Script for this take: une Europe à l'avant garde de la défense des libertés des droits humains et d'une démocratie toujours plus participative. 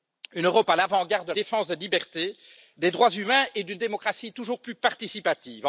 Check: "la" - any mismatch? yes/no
yes